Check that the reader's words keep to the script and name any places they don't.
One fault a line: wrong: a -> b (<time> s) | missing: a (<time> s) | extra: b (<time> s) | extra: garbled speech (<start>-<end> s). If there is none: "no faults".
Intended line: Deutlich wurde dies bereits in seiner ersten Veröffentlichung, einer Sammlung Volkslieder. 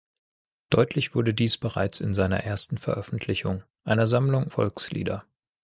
no faults